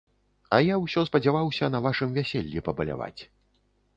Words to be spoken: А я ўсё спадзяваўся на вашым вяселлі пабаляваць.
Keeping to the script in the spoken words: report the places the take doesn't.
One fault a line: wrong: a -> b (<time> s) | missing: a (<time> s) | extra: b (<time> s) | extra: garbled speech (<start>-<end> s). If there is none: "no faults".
no faults